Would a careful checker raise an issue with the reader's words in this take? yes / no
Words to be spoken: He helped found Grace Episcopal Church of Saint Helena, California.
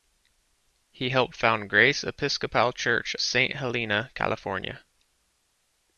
yes